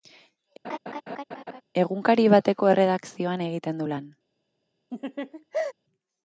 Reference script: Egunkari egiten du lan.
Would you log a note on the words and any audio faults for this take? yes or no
yes